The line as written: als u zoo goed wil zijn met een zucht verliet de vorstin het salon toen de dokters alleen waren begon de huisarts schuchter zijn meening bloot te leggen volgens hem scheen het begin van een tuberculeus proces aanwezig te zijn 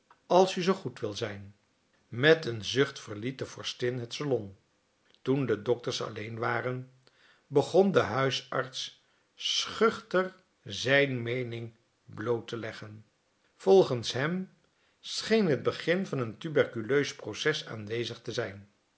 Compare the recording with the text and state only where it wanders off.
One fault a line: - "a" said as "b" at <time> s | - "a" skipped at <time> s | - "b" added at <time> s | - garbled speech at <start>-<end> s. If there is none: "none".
none